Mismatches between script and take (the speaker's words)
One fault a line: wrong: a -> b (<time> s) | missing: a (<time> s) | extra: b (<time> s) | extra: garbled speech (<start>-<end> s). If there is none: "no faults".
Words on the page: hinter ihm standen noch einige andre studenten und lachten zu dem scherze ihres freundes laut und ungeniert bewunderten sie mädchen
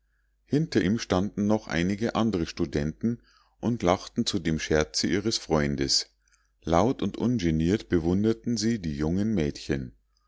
extra: die jungen (8.8 s)